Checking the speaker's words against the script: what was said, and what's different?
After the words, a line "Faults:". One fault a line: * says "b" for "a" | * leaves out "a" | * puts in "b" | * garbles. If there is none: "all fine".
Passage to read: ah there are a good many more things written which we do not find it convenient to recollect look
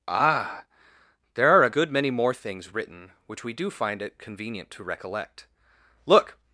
ah there are a good many more things written which we do find it convenient to recollect look
Faults:
* leaves out "not"